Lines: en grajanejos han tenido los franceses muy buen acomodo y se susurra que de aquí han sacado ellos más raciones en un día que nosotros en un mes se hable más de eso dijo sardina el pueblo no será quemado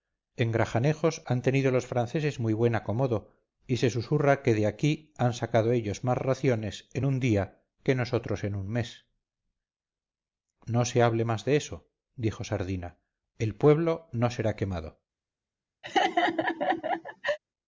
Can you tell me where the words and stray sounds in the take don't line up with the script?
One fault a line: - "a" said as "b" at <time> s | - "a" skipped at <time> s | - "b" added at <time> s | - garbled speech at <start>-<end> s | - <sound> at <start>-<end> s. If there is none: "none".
- "no" added at 10.7 s
- laugh at 15.8-17.4 s